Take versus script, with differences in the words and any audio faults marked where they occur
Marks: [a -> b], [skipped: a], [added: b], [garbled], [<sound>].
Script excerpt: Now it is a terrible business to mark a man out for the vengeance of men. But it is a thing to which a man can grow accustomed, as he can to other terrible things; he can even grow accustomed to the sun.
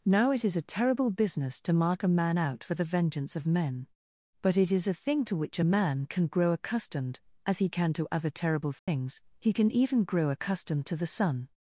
Now it is a terrible business to mark a man out for the vengeance of men. But it is a thing to which a man can grow accustomed, as he can to other terrible things; [dropout] he can even grow accustomed to the sun.